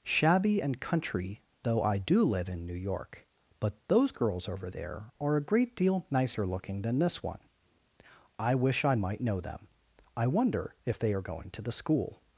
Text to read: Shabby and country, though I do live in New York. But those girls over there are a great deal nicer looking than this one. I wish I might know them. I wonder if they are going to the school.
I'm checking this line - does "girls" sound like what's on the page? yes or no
yes